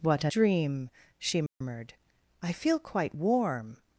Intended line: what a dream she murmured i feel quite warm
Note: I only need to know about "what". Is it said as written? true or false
true